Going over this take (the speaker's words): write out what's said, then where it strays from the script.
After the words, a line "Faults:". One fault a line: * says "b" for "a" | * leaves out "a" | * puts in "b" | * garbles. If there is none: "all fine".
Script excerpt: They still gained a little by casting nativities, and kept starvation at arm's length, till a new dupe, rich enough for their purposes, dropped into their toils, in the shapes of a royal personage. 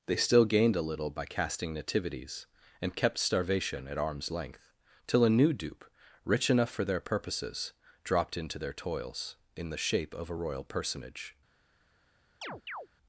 They still gained a little by casting nativities, and kept starvation at arm's length, till a new dupe, rich enough for their purposes, dropped into their toils, in the shape of a royal personage.
Faults:
* says "shape" for "shapes"